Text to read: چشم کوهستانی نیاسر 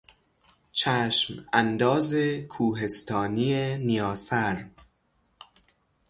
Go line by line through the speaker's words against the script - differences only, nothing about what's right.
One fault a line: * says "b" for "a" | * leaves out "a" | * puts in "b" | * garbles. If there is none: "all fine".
* puts in "انداز"